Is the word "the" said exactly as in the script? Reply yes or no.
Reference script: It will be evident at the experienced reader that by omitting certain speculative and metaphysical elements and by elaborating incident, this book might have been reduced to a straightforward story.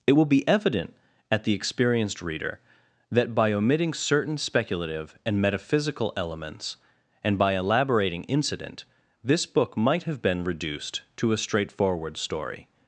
yes